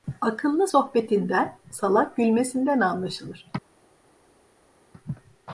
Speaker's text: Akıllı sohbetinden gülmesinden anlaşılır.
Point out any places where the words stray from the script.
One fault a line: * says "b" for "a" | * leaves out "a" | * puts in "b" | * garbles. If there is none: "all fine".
* puts in "salak"